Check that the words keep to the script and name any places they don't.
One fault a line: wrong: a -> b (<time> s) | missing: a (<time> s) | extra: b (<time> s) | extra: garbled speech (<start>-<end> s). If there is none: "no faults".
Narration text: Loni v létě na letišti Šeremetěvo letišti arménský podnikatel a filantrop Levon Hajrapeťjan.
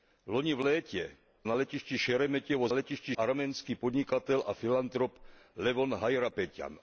no faults